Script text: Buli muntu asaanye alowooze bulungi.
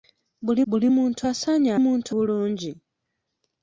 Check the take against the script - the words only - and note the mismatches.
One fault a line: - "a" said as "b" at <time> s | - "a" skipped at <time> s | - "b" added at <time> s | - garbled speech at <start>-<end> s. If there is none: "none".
- "buli" added at 0.7 s
- "alowooze" said as "muntu" at 1.8 s